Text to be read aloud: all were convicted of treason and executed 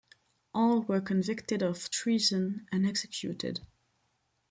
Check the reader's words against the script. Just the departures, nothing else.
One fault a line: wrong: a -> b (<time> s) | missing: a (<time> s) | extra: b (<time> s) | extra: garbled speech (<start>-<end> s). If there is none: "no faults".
no faults